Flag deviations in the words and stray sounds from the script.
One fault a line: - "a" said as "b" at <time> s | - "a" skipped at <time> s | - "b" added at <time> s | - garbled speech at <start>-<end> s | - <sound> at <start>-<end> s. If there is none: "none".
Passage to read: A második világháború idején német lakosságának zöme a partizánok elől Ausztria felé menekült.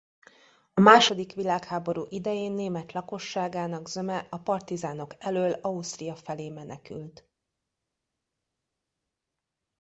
none